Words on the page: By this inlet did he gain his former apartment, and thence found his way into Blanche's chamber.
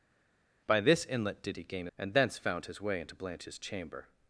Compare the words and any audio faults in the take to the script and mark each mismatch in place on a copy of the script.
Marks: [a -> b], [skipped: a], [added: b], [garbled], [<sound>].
By this inlet did he gain [skipped: his former apartment,] and thence found his way into Blanche's chamber.